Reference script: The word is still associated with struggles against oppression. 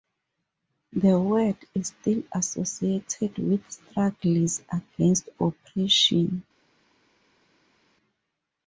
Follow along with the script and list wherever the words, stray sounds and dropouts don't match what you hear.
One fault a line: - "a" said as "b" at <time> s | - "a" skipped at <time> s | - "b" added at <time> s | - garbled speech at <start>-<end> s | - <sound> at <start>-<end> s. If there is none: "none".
none